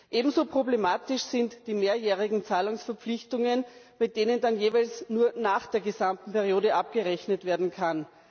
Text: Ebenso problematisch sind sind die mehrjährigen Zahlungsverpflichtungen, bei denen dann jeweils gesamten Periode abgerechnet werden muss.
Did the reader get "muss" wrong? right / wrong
wrong